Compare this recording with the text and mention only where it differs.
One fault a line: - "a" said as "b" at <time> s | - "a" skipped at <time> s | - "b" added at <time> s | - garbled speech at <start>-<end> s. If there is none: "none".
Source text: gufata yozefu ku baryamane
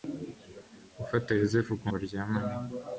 none